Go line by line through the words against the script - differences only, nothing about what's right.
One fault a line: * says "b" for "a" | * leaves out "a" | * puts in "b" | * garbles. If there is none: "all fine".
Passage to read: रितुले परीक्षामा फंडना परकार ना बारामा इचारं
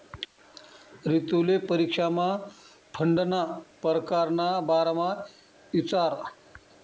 all fine